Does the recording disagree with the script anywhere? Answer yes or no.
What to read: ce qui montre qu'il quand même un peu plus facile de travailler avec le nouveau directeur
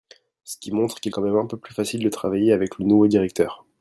no